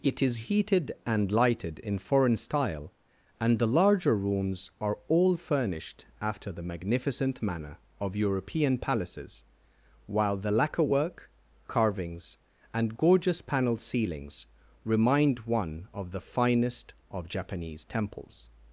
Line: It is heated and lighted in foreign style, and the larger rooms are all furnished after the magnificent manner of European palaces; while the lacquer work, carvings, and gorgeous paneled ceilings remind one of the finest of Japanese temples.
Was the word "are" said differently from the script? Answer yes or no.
no